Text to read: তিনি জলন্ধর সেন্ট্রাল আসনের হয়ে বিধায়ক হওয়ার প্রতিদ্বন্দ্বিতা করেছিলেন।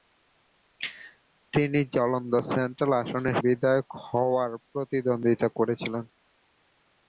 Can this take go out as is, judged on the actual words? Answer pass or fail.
fail